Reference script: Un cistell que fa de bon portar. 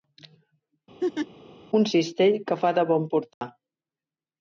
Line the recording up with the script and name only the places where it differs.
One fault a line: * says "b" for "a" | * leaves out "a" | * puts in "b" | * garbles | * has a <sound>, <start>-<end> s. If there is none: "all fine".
* has a laugh, 1.0-1.3 s
* has a dropout, 3.3-3.4 s